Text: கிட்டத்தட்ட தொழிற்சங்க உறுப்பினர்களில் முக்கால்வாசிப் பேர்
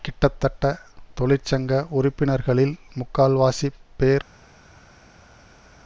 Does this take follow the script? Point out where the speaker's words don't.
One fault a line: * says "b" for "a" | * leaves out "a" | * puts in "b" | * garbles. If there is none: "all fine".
all fine